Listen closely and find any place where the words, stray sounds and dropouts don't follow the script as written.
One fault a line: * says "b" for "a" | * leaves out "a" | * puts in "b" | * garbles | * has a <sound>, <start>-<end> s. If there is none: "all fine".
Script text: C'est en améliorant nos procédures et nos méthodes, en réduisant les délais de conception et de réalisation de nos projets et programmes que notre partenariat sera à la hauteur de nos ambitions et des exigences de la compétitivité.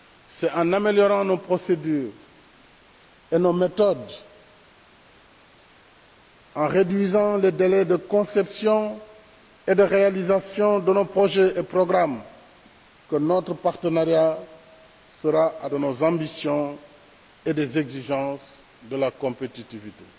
* leaves out "la hauteur"